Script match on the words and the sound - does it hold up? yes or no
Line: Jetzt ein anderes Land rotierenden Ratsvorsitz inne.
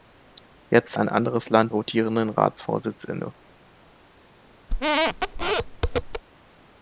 no